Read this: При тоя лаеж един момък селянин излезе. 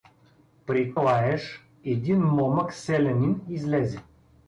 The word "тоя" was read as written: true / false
false